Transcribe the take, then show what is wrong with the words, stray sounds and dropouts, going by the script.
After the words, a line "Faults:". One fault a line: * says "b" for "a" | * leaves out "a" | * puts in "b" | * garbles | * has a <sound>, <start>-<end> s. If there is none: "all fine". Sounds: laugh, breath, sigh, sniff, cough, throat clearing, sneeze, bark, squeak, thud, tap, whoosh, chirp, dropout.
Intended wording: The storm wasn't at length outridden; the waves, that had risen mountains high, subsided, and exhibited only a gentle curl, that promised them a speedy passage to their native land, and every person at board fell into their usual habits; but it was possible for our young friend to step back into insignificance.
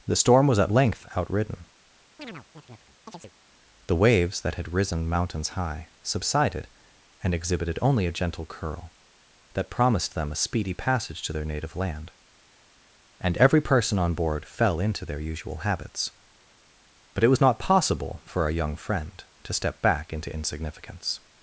The storm was at length outridden; the waves, that had risen mountains high, subsided, and exhibited only a gentle curl, that promised them a speedy passage to their native land, and every person on board fell into their usual habits; but it was not possible for our young friend to step back into insignificance.
Faults:
* says "was" for "wasn't"
* has a chirp, 2.2-3.3 s
* says "on" for "at"
* puts in "not"